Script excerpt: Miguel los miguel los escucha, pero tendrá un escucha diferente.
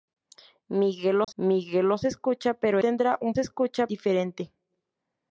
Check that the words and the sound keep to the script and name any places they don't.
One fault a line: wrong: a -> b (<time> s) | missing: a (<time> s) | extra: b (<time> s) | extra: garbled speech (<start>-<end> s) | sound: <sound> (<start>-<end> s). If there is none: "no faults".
sound: dropout (1.2-1.3 s)